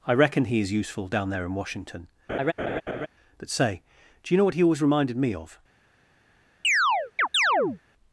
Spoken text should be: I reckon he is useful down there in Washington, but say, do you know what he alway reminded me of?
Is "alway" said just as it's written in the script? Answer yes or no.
no